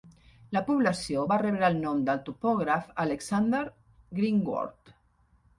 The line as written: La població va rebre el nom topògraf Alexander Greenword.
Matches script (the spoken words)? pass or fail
fail